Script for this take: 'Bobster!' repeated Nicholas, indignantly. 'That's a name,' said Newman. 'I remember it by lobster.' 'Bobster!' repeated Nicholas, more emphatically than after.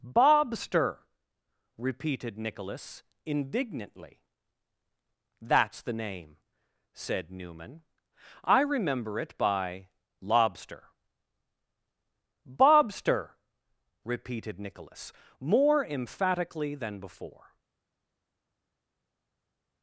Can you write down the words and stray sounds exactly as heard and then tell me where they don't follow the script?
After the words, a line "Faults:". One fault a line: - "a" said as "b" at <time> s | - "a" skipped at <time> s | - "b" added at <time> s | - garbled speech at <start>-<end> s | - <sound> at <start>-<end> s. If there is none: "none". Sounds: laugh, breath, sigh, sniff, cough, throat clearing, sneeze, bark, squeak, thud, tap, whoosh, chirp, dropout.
'Bobster!' repeated Nicholas, indignantly. 'That's the name,' said Newman. 'I remember it by lobster.' 'Bobster!' repeated Nicholas, more emphatically than before.
Faults:
- "a" said as "the" at 5.8 s
- "after" said as "before" at 17.0 s